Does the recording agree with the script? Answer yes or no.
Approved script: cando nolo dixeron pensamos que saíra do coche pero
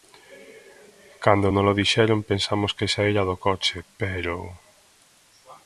yes